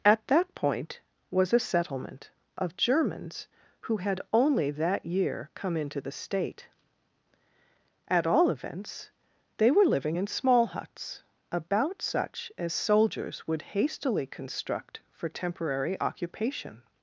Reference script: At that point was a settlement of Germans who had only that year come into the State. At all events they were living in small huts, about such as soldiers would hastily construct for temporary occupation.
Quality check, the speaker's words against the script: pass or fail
pass